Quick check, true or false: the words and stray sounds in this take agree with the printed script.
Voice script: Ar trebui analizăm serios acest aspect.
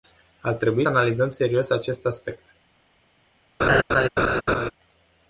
false